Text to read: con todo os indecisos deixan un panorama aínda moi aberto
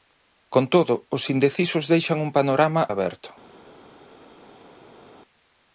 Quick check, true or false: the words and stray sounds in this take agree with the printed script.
false